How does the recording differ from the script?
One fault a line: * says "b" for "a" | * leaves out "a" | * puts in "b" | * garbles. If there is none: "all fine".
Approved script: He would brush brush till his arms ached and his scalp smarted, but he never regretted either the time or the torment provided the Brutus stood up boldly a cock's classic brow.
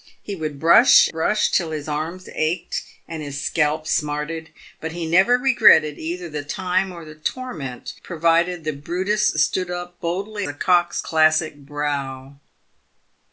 all fine